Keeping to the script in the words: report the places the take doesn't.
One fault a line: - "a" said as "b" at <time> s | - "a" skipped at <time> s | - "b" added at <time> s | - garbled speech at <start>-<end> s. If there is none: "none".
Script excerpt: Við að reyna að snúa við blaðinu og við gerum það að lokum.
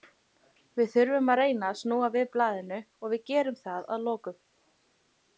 - "þurfum" added at 0.9 s